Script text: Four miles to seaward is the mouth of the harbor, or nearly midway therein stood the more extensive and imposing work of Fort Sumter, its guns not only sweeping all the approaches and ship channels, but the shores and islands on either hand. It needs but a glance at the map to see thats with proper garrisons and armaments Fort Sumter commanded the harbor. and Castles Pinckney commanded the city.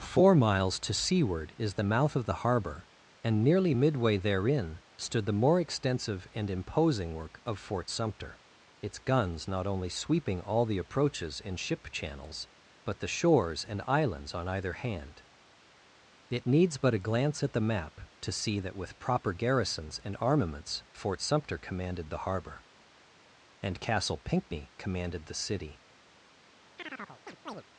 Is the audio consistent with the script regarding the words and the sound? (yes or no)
no